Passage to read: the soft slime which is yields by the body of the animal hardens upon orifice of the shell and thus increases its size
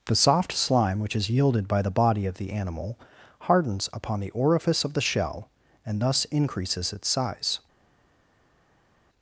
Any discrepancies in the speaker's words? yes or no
yes